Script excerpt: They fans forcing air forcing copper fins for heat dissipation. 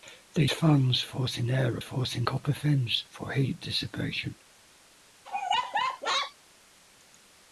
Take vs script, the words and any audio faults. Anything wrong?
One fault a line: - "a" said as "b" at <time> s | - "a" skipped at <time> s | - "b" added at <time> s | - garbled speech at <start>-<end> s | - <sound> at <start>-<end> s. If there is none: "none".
- laugh at 5.2-6.3 s